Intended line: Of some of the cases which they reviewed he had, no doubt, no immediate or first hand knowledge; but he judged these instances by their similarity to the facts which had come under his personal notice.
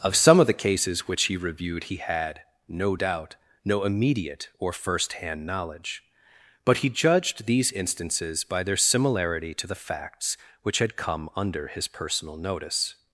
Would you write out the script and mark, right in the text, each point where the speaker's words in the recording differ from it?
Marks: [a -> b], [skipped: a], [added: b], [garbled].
Of some of the cases which [they -> he] reviewed he had, no doubt, no immediate or first hand knowledge; but he judged these instances by their similarity to the facts which had come under his personal notice.